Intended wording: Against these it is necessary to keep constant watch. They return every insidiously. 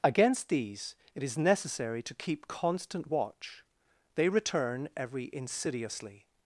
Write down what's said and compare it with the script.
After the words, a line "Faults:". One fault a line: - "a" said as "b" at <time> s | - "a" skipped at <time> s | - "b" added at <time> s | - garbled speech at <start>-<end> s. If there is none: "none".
Against these it is necessary to keep constant watch. They return every insidiously.
Faults:
none